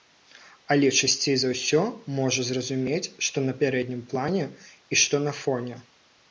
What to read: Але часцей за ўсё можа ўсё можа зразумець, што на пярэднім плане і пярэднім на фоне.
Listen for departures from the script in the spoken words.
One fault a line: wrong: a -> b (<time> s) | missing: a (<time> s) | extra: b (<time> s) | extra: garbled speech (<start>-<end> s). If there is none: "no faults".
missing: ўсё можа (2.5 s)
wrong: пярэднім -> што (5.1 s)